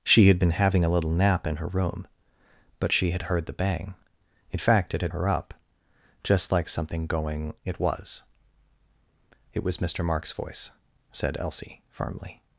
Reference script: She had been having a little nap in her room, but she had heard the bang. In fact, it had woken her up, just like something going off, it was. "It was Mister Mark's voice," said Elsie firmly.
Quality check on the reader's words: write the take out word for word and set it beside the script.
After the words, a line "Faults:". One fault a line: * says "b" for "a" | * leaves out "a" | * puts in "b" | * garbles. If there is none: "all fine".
She had been having a little nap in her room, but she had heard the bang. In fact, it had her up, just like something going it was. "It was Mister Mark's voice," said Elsie firmly.
Faults:
* leaves out "woken"
* leaves out "off"